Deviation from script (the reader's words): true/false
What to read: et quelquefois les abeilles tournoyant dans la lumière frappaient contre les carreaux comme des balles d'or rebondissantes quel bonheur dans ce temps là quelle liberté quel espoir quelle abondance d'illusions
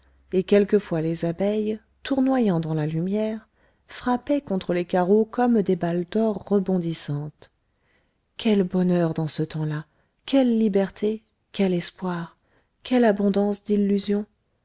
false